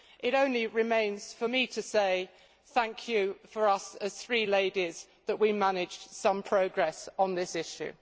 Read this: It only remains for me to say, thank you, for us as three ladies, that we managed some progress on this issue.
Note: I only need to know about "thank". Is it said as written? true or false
true